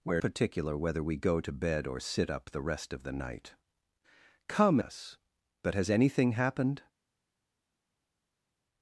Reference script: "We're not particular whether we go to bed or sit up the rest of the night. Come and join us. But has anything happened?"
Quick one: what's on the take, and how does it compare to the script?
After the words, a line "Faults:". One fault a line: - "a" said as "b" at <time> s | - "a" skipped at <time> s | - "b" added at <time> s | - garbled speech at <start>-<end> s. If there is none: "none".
"We're particular whether we go to bed or sit up the rest of the night. Come us. But has anything happened?"
Faults:
- "not" skipped at 0.2 s
- "and join" skipped at 4.8 s